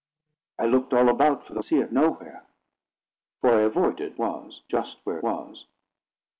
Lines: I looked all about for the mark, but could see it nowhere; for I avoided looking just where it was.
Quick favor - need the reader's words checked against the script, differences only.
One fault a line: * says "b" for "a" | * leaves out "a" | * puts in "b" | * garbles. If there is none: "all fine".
* leaves out "mark but could"
* says "was" for "looking"
* leaves out "it"